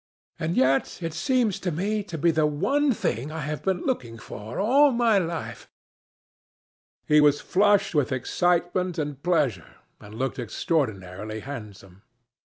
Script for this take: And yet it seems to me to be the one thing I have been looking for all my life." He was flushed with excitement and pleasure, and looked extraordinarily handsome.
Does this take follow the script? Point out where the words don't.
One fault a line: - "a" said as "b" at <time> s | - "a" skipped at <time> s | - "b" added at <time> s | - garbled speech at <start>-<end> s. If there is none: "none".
none